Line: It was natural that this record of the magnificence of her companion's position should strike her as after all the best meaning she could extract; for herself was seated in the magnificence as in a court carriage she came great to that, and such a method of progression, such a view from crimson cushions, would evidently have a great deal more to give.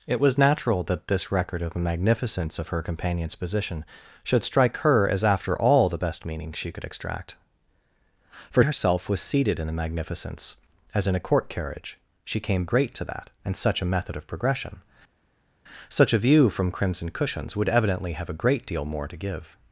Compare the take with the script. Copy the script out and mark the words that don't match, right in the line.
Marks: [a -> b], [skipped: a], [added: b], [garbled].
It was natural that this record of the magnificence of her companion's position should strike her as after all the best meaning she could extract; for herself was seated in the magnificence as in a court carriage she came great to that, and such a method of progression, such a view from crimson cushions, would evidently have a great deal more to give.